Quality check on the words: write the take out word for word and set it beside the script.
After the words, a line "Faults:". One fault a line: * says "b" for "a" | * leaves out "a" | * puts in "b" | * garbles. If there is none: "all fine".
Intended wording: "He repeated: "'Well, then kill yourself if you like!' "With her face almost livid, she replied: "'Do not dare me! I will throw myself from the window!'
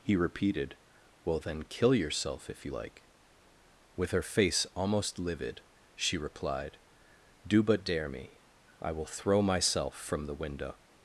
"He repeated: "'Well, then kill yourself if you like!' "With her face almost livid, she replied: "'Do but dare me! I will throw myself from the window!'
Faults:
* says "but" for "not"